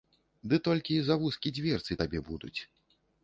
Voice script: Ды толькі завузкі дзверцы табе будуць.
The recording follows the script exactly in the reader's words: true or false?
true